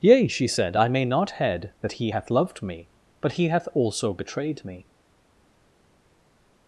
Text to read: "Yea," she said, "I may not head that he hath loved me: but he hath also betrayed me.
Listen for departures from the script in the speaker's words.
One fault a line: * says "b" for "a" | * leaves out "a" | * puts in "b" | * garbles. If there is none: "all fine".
all fine